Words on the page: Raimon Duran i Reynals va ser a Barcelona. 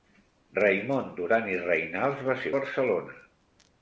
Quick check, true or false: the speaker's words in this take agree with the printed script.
true